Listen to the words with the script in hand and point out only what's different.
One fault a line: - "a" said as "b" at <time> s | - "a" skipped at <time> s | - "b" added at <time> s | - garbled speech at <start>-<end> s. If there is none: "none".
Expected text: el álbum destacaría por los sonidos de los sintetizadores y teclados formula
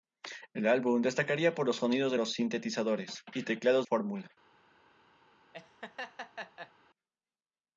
none